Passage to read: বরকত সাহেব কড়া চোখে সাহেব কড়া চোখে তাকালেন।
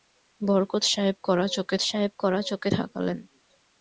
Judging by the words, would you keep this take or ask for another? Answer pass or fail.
pass